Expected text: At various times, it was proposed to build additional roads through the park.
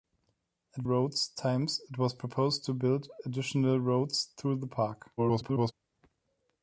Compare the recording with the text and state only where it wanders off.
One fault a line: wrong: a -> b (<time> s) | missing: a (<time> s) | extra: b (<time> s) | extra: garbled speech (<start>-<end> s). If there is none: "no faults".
wrong: various -> roads (0.8 s)
extra: garbled speech (5.2-5.7 s)